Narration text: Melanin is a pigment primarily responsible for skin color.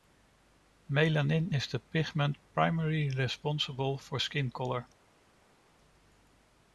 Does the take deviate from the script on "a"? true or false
true